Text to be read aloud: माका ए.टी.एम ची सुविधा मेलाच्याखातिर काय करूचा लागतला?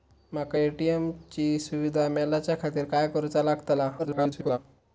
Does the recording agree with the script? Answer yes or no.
no